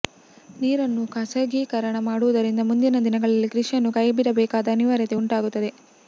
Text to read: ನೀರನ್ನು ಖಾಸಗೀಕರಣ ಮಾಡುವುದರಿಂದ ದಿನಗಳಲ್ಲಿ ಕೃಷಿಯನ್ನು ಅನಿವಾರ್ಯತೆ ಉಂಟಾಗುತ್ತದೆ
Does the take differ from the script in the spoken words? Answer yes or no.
yes